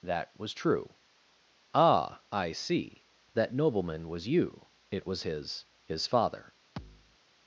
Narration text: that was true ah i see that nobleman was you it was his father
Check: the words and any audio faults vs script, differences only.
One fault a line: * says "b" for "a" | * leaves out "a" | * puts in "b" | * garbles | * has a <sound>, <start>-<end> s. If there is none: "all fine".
* puts in "his"
* has a thud, 6.8-7.2 s